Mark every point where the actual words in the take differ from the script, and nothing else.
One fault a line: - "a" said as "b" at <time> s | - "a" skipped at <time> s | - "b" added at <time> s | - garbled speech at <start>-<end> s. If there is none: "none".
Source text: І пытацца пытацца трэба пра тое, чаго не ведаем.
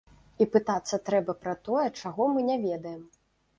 - "пытацца" skipped at 1.0 s
- "мы" added at 2.4 s